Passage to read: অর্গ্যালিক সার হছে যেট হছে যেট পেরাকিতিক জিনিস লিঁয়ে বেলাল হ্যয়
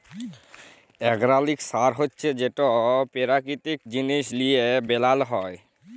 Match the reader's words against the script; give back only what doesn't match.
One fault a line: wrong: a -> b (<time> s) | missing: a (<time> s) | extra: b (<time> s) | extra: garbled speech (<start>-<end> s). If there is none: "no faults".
missing: হছে যেট (2.6 s)